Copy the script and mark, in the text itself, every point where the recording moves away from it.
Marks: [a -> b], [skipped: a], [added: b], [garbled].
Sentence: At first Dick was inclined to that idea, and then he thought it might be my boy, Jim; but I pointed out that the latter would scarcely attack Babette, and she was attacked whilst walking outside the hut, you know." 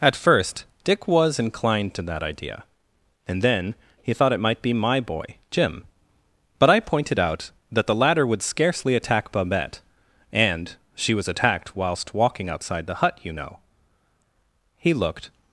At first Dick was inclined to that idea, and then he thought it might be my boy, Jim; but I pointed out that the latter would scarcely attack Babette, and she was attacked whilst walking outside the hut, you know." [added: He looked]